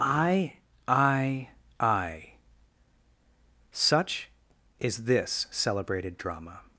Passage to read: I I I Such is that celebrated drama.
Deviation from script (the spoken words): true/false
true